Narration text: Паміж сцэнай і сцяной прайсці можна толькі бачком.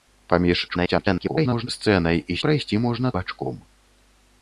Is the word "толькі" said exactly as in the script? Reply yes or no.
no